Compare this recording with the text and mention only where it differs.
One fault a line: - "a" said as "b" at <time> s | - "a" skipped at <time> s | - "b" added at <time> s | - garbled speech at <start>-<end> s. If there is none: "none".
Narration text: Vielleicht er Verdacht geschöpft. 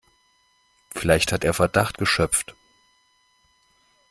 - "hat" added at 1.3 s